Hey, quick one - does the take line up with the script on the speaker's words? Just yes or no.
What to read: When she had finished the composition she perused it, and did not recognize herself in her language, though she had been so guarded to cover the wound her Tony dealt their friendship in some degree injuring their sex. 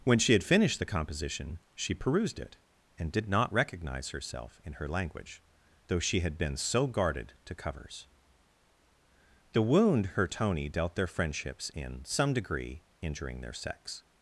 no